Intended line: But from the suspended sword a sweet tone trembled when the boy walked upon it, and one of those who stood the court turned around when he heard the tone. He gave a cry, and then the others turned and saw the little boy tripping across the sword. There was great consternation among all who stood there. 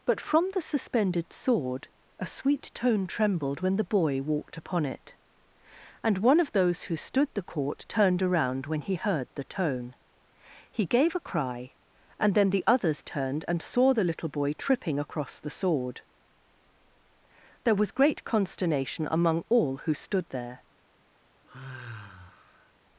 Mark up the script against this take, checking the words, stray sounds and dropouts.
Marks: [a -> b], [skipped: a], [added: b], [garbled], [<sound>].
But from the suspended sword a sweet tone trembled when the boy walked upon it, and one of those who stood the court turned around when he heard the tone. He gave a cry, and then the others turned and saw the little boy tripping across the sword. There was great consternation among all who stood there. [sigh]